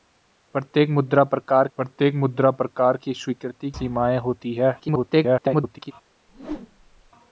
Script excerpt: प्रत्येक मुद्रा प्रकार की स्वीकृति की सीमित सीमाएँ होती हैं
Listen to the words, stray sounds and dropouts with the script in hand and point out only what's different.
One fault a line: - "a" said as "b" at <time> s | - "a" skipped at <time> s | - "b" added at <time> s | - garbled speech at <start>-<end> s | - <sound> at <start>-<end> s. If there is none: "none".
- "की स्वीकृति" said as "प्रत्येक मुद्रा प्रकार" at 1.8 s
- "सीमित" said as "स्वीकृति" at 3.1 s
- garbled speech at 4.8-5.9 s
- whoosh at 6.3-7.1 s